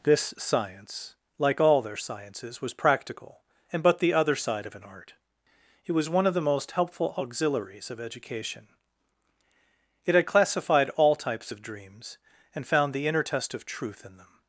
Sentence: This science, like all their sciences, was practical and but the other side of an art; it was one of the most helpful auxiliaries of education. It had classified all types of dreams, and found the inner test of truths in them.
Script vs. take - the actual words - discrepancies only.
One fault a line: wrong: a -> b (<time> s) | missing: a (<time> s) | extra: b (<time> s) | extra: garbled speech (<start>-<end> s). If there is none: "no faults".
wrong: truths -> truth (13.6 s)